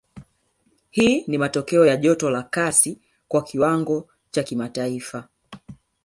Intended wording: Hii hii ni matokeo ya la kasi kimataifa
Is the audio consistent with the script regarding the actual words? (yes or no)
no